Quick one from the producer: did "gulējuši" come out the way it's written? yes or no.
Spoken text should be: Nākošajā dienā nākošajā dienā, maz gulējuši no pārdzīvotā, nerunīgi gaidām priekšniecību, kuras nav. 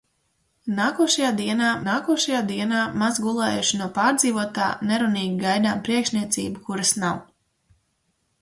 yes